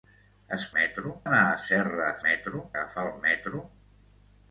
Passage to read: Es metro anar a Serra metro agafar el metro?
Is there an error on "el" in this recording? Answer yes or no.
no